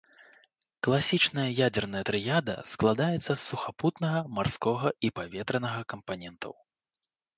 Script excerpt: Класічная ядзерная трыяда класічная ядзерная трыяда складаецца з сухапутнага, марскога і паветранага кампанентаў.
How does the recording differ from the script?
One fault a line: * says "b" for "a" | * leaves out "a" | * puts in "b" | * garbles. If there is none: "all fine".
* leaves out "класічная ядзерная трыяда"